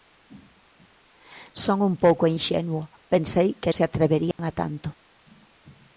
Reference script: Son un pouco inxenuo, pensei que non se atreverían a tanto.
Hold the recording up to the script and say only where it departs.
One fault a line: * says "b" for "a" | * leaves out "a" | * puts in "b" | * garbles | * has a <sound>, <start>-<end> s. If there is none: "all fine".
* leaves out "non"
* has a dropout, 4.3-4.4 s